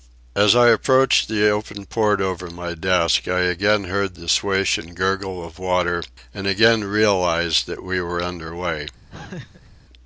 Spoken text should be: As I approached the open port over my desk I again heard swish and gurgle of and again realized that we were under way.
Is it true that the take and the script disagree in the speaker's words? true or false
true